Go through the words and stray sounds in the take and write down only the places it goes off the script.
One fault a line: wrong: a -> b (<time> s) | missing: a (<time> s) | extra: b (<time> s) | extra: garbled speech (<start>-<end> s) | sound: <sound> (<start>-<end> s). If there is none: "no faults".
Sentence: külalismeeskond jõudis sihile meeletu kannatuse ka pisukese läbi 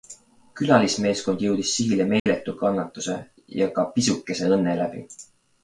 sound: dropout (2.2-2.3 s)
extra: ja (3.6 s)
extra: õnne (4.6 s)